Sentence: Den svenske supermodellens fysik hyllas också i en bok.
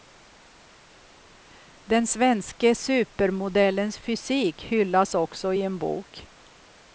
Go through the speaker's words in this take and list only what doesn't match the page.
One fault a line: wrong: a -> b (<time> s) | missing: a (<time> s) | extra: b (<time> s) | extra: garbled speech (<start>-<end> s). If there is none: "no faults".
no faults